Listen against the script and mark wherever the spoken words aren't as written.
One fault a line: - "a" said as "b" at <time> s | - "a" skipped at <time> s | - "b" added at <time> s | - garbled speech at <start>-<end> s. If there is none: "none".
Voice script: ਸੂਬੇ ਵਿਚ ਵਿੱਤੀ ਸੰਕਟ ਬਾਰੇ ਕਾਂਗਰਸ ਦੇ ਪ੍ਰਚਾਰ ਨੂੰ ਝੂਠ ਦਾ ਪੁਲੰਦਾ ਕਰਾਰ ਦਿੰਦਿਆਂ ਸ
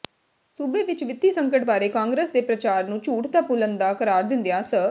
none